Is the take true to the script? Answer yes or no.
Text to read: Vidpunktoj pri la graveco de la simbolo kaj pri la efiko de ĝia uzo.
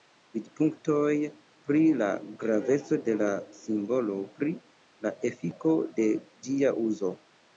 no